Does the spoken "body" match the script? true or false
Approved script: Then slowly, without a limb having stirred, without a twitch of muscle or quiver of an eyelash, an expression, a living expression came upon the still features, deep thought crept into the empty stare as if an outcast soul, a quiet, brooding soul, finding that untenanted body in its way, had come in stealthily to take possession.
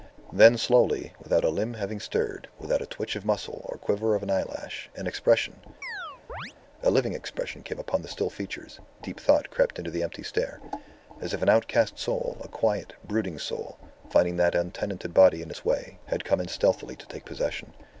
true